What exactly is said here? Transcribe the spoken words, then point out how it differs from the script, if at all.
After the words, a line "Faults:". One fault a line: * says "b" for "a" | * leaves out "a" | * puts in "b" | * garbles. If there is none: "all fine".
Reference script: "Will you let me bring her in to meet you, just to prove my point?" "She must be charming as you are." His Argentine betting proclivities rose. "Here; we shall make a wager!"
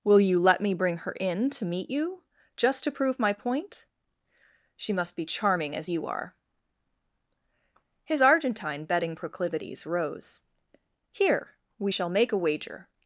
"Will you let me bring her in to meet you, just to prove my point?" "She must be charming as you are." His Argentine betting proclivities rose. "Here; we shall make a wager!"
Faults:
all fine